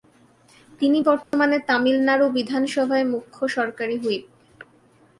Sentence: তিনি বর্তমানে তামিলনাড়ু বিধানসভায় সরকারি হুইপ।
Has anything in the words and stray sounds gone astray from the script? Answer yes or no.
yes